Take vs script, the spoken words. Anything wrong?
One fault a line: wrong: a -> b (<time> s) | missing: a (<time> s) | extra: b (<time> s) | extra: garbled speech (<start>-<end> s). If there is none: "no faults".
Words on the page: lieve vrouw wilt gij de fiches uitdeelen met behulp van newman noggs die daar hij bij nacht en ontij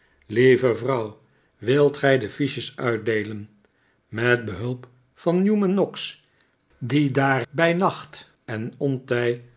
missing: hij (7.5 s)